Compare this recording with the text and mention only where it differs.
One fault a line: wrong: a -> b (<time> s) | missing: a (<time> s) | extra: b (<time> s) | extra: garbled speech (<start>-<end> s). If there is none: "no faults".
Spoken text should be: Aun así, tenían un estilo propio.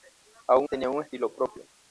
missing: así (0.7 s)